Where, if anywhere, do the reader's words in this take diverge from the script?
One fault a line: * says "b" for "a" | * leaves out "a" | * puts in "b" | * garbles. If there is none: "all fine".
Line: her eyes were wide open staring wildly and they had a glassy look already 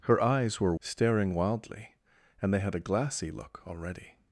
* leaves out "wide open"